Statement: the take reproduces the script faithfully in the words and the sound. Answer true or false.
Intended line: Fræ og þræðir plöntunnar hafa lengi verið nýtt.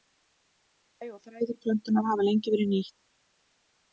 true